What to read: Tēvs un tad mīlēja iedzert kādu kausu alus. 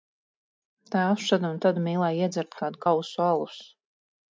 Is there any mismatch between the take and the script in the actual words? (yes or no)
yes